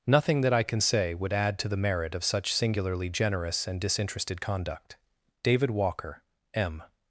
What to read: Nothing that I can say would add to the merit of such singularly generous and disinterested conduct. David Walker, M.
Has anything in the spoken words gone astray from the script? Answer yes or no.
no